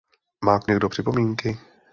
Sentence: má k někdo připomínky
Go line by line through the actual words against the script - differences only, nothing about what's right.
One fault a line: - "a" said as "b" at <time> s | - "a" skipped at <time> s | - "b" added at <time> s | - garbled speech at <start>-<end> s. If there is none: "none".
none